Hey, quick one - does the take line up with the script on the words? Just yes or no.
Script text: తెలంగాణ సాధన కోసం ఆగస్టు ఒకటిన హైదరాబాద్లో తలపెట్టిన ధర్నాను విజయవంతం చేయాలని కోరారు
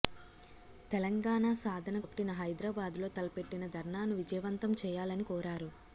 no